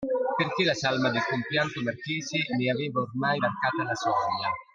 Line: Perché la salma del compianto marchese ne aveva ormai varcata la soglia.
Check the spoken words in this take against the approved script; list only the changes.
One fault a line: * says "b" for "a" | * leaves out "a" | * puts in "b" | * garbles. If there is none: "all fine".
all fine